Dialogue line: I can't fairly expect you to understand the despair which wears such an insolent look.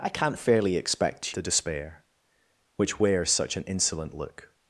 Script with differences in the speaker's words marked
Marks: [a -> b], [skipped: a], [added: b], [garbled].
I can't fairly expect [skipped: you to understand] the despair which wears such an insolent look.